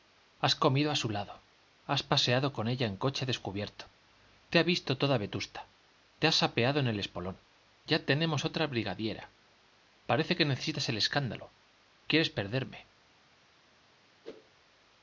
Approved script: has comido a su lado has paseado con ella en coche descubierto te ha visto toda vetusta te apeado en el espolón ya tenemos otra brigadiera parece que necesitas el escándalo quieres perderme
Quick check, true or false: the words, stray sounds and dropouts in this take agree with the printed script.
false